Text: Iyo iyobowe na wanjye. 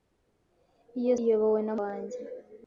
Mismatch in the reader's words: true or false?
false